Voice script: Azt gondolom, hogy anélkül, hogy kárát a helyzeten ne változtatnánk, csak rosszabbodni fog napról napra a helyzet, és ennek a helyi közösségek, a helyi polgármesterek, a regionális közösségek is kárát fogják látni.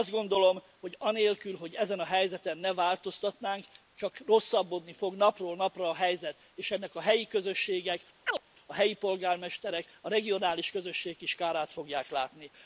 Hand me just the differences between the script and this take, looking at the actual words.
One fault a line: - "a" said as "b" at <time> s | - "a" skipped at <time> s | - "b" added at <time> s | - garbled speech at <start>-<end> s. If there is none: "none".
- "kárát" said as "ezen" at 1.8 s